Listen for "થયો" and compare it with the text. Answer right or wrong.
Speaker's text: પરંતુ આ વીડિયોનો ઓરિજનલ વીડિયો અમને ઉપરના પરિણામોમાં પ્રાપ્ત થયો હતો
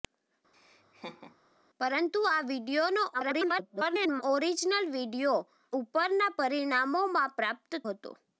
wrong